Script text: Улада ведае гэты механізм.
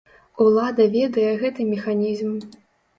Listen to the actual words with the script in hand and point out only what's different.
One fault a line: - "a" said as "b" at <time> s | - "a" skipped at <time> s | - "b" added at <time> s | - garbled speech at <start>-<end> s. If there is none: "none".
none